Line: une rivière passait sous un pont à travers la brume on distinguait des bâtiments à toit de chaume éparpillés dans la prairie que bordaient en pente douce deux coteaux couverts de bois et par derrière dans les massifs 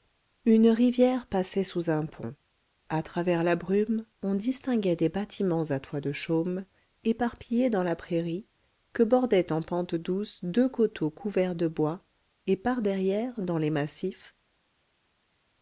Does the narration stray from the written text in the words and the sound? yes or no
no